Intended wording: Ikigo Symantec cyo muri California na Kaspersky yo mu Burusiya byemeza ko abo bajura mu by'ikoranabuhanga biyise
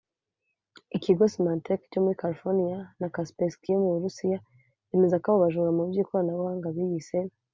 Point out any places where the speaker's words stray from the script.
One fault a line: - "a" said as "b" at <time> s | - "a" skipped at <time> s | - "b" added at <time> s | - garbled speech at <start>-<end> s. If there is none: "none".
none